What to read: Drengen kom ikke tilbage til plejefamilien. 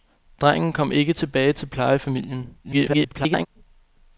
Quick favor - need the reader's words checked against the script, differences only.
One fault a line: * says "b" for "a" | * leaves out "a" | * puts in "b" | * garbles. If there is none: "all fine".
* garbles